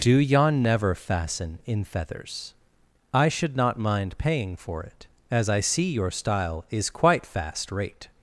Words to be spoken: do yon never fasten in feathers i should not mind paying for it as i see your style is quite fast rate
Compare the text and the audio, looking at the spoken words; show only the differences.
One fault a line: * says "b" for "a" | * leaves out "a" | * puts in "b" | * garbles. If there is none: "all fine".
all fine